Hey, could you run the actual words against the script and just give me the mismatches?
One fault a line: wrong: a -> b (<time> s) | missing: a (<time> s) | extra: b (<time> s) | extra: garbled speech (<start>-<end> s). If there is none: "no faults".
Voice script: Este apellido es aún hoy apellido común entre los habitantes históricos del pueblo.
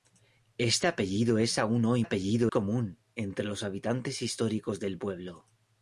no faults